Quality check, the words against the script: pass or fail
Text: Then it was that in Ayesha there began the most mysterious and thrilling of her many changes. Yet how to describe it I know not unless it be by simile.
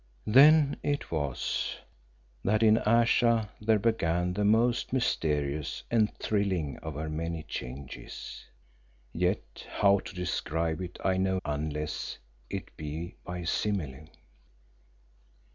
fail